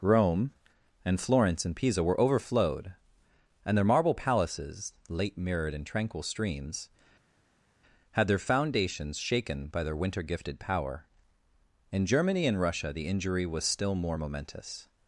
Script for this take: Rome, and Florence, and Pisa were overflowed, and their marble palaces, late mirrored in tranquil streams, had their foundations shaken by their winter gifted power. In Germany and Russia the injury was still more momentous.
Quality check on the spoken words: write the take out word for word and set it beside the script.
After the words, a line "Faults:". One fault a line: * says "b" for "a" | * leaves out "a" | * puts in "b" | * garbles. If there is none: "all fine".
Rome, and Florence, and Pisa were overflowed, and their marble palaces, late mirrored in tranquil streams, had their foundations shaken by their winter gifted power. In Germany and Russia the injury was still more momentous.
Faults:
all fine